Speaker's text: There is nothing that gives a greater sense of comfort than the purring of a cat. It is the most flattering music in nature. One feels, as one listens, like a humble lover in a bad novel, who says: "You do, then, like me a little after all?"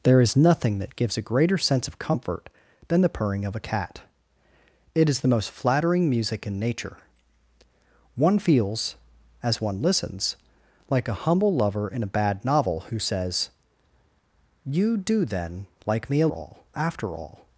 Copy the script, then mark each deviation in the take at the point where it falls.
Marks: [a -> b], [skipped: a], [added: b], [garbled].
There is nothing that gives a greater sense of comfort than the purring of a cat. It is the most flattering music in nature. One feels, as one listens, like a humble lover in a bad novel, who says: "You do, then, like me a [little -> all] after all?"